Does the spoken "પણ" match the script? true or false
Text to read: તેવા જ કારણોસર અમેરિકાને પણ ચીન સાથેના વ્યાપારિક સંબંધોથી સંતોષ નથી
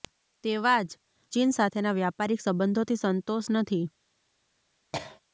false